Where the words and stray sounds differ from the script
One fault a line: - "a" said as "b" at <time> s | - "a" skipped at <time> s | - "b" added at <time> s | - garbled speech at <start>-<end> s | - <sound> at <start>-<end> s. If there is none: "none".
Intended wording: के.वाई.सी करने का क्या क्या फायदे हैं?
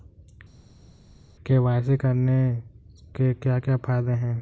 - "का" said as "के" at 3.2 s